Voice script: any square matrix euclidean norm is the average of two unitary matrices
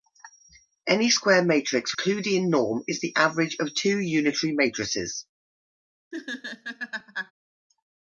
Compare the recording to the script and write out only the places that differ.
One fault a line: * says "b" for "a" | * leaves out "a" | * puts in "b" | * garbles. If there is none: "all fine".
all fine